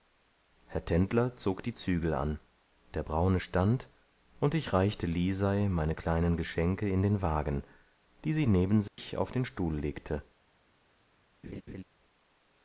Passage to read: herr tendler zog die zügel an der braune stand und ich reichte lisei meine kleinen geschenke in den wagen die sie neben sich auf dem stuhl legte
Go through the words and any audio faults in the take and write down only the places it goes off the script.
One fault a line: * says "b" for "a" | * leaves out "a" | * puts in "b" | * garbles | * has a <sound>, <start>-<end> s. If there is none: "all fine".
* has a dropout, 8.9-9.0 s
* says "den" for "dem"
* has a laugh, 11.4-11.8 s